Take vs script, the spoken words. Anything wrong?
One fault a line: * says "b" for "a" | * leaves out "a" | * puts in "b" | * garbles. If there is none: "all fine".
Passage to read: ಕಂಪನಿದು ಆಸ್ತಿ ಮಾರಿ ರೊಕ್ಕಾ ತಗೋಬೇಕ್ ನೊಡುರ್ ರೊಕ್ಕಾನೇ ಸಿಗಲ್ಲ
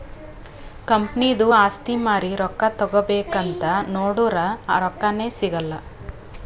* puts in "ಅಂತ್"